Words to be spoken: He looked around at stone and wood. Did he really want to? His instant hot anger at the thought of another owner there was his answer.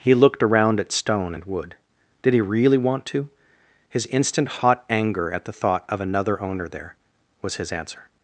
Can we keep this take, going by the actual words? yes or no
yes